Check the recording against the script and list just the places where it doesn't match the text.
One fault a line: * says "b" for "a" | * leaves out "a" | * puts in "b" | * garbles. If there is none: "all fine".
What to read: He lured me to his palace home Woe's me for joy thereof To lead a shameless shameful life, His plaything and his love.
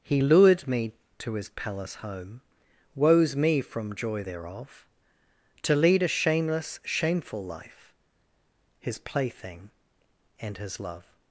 * says "from" for "for"